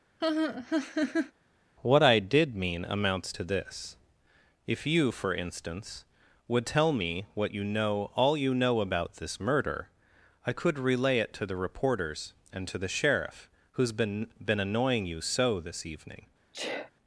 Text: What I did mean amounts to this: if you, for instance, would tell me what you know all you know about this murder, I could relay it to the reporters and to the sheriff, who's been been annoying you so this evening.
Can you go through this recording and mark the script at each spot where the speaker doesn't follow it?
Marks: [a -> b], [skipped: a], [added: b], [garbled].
What I did mean amounts to this: if you, for instance, would tell me what you know all you know about this murder, I could relay it to the reporters and to the sheriff, who's been been annoying you so this evening.